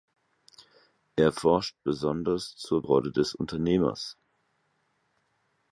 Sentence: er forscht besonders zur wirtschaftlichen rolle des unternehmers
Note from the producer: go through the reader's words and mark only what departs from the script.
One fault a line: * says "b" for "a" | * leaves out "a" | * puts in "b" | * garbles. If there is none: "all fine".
* leaves out "wirtschaftlichen"